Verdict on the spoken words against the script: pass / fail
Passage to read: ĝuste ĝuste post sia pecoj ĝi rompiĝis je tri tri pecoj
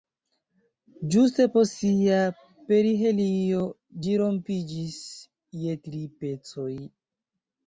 fail